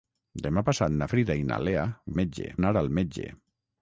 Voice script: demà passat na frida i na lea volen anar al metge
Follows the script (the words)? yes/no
no